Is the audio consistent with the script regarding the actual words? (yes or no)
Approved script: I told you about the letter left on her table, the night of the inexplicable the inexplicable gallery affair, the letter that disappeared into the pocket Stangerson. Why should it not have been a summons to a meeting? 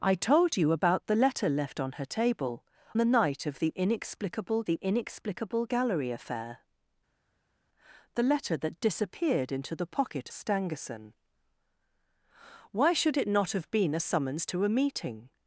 yes